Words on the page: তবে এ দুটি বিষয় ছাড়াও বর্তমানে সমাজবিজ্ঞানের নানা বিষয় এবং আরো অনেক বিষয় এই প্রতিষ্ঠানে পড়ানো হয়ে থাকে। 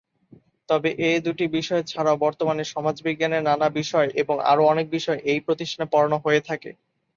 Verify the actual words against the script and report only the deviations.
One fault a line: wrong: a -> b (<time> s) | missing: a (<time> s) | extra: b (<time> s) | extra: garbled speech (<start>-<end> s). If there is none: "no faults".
no faults